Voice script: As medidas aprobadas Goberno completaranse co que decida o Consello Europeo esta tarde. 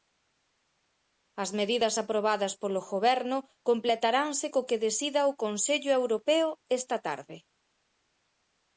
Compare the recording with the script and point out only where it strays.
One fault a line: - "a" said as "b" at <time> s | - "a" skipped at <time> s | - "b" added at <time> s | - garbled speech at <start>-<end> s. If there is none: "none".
- "polo" added at 2.6 s